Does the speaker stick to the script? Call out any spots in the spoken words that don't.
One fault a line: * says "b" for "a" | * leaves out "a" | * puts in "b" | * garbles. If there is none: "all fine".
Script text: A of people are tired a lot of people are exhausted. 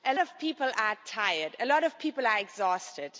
all fine